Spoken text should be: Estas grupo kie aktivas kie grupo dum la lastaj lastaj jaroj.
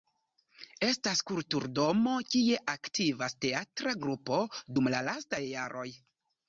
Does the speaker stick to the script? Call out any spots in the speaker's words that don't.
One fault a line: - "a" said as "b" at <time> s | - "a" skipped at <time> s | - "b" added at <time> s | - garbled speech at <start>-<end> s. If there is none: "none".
- "grupo" said as "kulturdomo" at 1.3 s
- "kie" said as "teatra" at 3.5 s
- "lastaj" skipped at 5.5 s